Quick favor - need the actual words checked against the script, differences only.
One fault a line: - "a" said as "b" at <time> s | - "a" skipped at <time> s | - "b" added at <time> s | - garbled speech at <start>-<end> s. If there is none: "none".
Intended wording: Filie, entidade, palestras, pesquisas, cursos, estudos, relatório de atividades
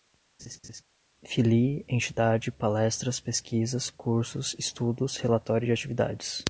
none